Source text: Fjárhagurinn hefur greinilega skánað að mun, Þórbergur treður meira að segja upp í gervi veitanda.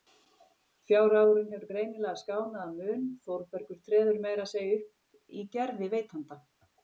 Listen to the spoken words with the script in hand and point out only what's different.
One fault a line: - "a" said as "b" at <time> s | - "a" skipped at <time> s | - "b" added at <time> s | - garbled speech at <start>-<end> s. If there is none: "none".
none